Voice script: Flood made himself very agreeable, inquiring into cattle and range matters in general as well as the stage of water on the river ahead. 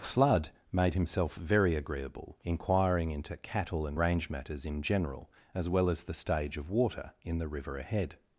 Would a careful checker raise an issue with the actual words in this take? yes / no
yes